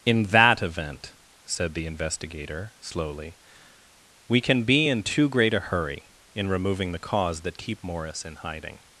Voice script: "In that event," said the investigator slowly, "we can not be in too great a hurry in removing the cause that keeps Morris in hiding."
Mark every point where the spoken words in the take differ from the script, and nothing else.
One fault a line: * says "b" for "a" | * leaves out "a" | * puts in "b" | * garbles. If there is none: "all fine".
* leaves out "not"
* says "keep" for "keeps"